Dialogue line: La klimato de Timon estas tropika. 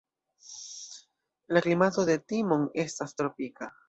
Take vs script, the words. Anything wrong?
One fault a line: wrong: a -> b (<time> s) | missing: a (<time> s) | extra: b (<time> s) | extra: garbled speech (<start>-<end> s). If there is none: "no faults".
no faults